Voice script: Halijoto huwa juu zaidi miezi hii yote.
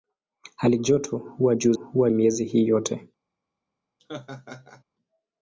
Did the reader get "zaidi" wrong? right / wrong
wrong